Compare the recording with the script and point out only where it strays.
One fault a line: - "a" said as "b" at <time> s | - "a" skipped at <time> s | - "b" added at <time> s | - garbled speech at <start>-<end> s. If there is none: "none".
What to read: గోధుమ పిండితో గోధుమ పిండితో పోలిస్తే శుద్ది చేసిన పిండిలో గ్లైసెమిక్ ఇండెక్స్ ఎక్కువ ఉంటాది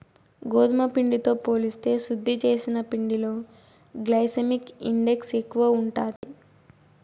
- "గోధుమ పిండితో" skipped at 1.3 s